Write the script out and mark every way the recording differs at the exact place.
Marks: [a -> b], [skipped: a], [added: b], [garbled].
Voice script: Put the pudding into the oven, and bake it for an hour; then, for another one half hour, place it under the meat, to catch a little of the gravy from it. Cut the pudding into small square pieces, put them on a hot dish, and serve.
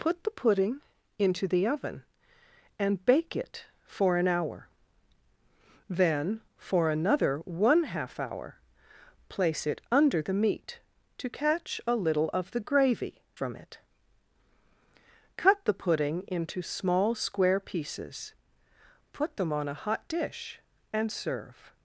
Put the pudding into the oven, and bake it for an hour; then, for another one half hour, place it under the meat, to catch a little of the gravy from it. Cut the pudding into small square pieces, put them on a hot dish, and serve.